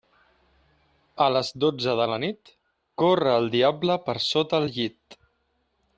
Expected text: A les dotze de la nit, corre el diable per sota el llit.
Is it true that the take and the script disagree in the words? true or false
false